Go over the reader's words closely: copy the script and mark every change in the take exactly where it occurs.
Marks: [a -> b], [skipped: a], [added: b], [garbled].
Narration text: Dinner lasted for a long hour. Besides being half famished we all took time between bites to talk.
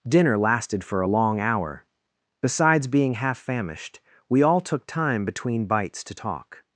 Dinner lasted for a long hour. Besides being half famished we all took time between bites to talk.